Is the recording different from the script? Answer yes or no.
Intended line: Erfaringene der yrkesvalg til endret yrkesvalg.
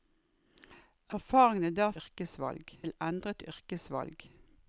no